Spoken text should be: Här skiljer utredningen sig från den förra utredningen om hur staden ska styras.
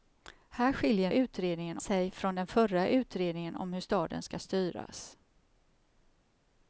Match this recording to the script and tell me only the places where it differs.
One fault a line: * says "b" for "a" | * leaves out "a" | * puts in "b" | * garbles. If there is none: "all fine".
all fine